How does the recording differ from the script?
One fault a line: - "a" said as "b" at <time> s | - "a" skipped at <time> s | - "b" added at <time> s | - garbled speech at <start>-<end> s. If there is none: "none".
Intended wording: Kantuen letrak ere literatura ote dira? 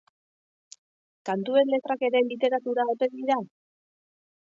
none